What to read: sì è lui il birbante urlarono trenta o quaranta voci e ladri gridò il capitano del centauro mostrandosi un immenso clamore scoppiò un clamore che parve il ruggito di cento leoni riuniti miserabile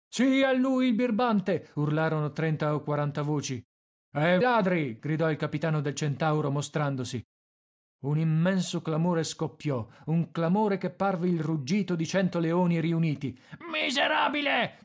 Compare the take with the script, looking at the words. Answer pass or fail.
pass